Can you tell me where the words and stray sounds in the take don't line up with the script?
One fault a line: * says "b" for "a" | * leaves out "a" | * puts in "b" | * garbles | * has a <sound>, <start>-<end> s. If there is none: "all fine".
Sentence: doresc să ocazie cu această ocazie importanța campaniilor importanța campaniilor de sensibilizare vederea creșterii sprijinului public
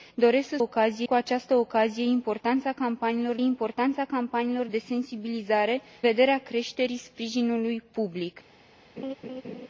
* has a laugh, 9.0-9.7 s